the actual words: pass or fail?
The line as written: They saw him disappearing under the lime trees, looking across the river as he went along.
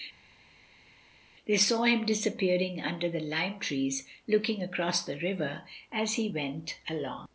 pass